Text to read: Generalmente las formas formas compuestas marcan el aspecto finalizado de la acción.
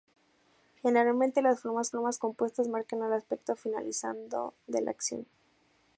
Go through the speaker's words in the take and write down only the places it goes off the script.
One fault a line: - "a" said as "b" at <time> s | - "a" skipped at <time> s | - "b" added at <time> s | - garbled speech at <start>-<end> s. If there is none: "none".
none